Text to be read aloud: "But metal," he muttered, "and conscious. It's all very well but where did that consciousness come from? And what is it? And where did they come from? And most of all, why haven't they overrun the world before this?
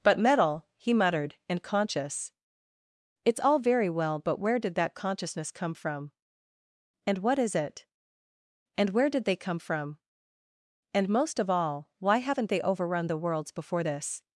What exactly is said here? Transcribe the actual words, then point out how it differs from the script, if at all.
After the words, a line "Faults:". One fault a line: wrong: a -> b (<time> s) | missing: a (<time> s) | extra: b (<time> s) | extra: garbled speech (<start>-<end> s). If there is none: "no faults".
"But metal," he muttered, "and conscious. It's all very well but where did that consciousness come from? And what is it? And where did they come from? And most of all, why haven't they overrun the worlds before this?
Faults:
wrong: world -> worlds (13.2 s)